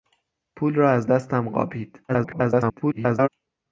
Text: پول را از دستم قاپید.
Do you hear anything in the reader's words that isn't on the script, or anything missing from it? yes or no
yes